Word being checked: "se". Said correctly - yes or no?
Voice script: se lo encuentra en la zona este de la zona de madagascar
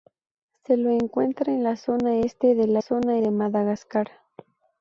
yes